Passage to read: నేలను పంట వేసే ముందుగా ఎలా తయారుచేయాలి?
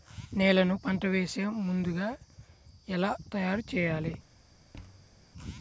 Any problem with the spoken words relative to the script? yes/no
no